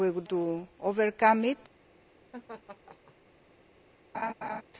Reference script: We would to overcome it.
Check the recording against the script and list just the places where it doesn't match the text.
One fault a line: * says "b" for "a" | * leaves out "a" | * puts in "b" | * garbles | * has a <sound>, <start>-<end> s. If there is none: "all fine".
* has a laugh, 2.3-3.1 s
* has a laugh, 4.1-4.6 s